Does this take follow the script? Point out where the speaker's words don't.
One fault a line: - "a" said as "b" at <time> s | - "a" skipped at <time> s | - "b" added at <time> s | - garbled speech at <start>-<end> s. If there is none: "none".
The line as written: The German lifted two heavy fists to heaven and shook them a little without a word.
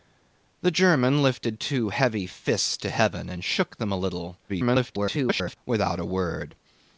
- garbled speech at 4.5-5.6 s